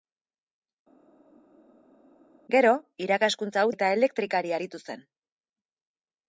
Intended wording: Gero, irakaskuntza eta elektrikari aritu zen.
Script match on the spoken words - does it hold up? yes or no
yes